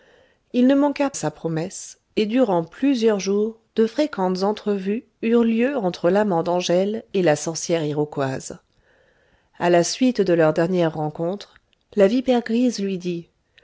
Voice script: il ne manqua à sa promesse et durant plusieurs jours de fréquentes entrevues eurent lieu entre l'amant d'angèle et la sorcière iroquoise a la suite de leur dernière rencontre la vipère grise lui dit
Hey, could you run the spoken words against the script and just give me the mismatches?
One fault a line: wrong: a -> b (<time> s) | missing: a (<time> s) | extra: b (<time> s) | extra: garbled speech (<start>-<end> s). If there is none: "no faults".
no faults